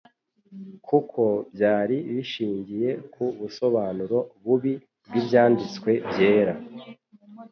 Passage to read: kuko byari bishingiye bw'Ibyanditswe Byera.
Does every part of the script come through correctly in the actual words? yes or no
no